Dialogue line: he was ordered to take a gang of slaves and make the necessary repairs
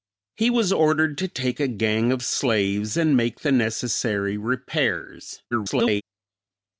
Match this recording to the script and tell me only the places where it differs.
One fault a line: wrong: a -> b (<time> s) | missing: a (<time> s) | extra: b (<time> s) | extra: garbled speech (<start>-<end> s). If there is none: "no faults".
extra: garbled speech (5.5-6.0 s)